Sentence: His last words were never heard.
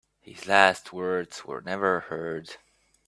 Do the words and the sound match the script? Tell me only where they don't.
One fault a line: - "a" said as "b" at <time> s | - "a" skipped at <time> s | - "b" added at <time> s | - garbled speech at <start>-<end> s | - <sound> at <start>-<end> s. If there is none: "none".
none